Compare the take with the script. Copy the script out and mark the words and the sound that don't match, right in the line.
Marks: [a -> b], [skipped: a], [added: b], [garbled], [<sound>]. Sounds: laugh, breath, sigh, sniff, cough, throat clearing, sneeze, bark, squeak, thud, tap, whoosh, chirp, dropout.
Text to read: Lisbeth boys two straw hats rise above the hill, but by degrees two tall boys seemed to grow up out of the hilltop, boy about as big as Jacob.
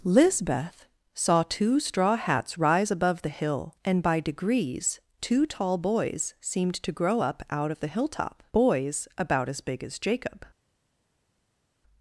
Lisbeth [boys -> saw] two straw hats rise above the hill, [but -> and] by degrees two tall boys seemed to grow up out of the hilltop, [boy -> boys] about as big as Jacob.